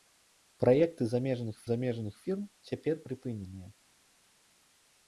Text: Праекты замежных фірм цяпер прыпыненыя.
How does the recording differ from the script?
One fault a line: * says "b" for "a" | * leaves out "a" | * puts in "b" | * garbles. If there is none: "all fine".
* puts in "замежных"